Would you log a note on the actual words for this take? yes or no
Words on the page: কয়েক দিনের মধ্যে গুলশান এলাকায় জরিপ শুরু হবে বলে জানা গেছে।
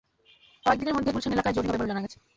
yes